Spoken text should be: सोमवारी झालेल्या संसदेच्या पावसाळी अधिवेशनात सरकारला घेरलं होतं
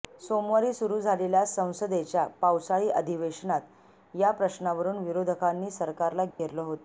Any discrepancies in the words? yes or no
yes